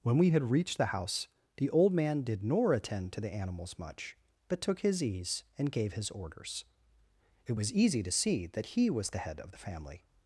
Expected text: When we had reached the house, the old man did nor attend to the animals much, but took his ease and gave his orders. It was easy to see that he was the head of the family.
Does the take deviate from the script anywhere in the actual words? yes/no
no